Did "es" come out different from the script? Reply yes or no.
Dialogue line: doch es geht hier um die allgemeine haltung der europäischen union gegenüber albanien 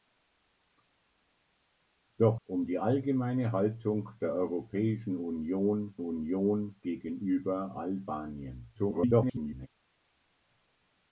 yes